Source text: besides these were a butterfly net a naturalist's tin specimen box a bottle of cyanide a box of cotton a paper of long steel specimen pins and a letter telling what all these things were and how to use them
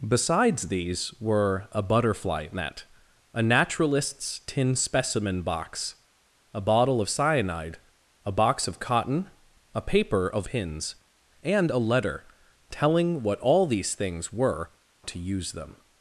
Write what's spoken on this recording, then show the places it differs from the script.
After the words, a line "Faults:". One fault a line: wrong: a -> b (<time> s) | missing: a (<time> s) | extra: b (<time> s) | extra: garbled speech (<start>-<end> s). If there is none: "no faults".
besides these were a butterfly net a naturalist's tin specimen box a bottle of cyanide a box of cotton a paper of pins and a letter telling what all these things were to use them
Faults:
missing: long steel specimen (10.5 s)
missing: and how (14.7 s)